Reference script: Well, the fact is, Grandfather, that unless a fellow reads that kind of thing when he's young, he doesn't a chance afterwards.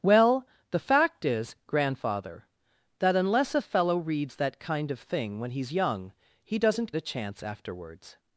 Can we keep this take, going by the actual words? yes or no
yes